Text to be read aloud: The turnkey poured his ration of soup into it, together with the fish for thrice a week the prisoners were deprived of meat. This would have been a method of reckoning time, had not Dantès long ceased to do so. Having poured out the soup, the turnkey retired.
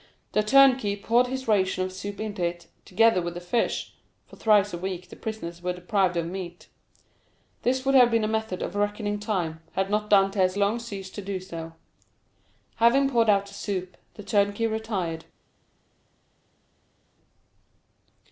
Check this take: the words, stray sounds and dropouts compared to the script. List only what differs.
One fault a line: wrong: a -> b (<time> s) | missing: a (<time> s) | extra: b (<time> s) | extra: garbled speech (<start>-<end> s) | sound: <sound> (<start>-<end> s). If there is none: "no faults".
no faults